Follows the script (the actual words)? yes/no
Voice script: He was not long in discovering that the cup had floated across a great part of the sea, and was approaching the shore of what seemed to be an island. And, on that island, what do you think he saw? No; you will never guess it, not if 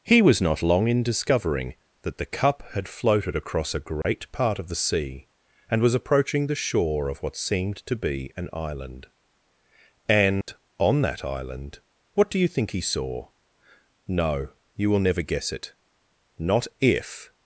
yes